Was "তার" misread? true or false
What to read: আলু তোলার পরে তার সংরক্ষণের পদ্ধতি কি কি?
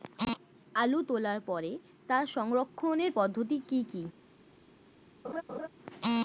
false